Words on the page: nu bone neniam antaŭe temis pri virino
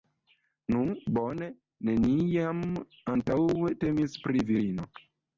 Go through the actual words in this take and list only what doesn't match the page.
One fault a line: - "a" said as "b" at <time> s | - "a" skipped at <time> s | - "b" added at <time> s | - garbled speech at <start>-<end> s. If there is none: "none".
none